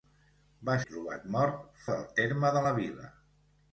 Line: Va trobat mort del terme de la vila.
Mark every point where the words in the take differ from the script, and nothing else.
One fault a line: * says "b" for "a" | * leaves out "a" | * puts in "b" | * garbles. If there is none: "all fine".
all fine